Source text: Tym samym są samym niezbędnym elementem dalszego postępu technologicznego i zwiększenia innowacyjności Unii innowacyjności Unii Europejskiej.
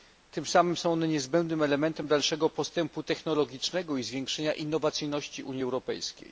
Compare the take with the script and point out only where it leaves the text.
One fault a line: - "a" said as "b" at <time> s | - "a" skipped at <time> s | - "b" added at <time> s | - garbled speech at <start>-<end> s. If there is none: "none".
- "samym" said as "one" at 0.9 s
- "innowacyjności Unii" skipped at 5.6 s